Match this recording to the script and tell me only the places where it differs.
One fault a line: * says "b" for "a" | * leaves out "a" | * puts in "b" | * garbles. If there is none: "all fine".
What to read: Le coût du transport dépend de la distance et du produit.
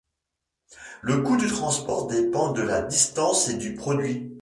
all fine